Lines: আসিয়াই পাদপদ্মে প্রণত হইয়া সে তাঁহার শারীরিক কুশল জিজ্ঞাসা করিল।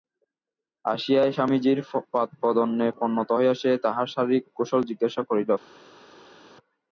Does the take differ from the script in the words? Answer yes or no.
yes